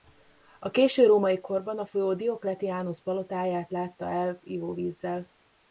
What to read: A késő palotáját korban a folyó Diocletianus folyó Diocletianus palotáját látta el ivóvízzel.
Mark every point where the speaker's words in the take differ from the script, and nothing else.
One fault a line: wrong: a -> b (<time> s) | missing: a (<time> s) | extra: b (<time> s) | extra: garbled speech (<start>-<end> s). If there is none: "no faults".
wrong: palotáját -> római (1.1 s)
missing: folyó Diocletianus (3.0 s)